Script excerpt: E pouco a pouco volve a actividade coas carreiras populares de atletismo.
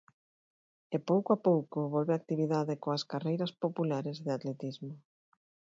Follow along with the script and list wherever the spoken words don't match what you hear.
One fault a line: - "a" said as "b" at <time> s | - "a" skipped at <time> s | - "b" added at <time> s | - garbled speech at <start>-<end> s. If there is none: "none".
none